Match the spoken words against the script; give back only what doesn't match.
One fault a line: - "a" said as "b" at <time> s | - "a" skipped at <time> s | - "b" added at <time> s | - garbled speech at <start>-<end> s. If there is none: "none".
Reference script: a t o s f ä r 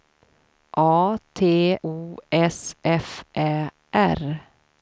none